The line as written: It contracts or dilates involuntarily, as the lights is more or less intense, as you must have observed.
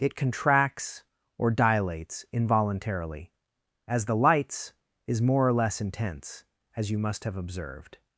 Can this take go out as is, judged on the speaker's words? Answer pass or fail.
pass